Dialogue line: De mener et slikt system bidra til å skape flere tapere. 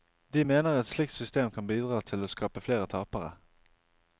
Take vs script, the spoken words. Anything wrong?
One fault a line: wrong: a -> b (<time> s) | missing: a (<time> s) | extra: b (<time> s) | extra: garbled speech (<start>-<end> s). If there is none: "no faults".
extra: kan (1.5 s)